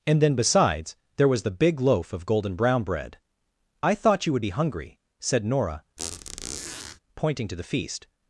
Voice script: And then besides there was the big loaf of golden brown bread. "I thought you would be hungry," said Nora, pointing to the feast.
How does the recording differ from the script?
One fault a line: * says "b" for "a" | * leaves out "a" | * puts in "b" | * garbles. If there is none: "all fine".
all fine